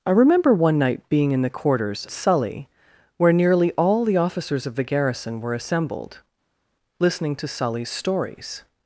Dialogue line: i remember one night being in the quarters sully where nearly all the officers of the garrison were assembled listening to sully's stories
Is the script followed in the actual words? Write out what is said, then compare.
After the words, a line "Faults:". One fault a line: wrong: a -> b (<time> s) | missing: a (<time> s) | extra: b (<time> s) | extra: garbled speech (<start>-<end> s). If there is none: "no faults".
i remember one night being in the quarters sully where nearly all the officers of the garrison were assembled listening to sully's stories
Faults:
no faults